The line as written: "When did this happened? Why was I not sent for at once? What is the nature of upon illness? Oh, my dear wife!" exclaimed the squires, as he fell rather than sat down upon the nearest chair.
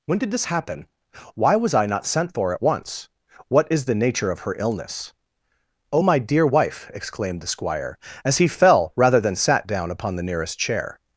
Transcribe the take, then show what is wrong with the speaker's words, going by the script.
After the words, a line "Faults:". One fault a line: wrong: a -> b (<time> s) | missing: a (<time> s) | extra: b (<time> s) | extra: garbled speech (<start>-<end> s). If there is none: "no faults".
"When did this happen? Why was I not sent for at once? What is the nature of her illness? Oh, my dear wife!" exclaimed the squire, as he fell rather than sat down upon the nearest chair.
Faults:
wrong: happened -> happen (0.5 s)
wrong: upon -> her (4.4 s)
wrong: squires -> squire (7.5 s)